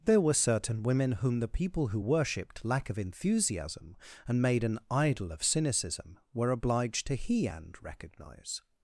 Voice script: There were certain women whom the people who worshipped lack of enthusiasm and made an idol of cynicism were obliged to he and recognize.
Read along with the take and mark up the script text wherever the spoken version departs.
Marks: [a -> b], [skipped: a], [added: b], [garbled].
There were certain women whom the people who worshipped lack of enthusiasm and made an idol of cynicism were obliged to he and recognize.